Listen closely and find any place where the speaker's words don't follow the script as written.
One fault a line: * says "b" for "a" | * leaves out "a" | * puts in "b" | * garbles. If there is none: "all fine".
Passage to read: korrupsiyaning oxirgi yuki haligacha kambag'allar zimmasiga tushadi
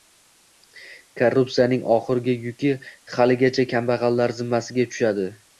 all fine